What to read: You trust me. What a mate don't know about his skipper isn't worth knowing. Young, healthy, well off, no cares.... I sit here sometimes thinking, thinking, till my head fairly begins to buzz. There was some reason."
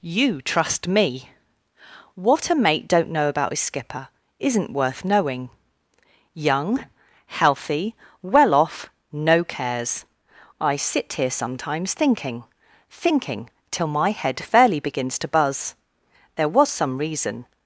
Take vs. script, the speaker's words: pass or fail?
pass